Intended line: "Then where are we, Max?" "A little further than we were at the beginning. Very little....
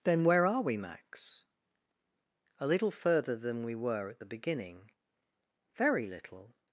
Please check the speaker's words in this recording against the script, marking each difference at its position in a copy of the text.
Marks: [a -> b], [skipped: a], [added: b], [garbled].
"Then where are we, Max?" "A little further than we were at the beginning. Very little....